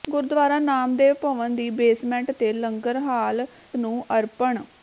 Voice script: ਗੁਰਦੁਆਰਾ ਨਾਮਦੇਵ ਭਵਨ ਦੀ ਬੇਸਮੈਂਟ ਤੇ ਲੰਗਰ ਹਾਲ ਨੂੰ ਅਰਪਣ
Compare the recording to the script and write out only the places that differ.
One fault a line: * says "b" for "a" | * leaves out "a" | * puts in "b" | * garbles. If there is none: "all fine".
all fine